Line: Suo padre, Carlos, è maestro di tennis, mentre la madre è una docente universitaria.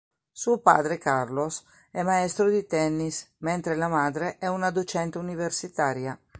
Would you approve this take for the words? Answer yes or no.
yes